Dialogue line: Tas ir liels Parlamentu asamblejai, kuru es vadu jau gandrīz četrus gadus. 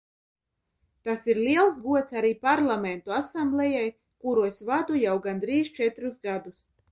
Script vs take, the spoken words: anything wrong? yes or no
yes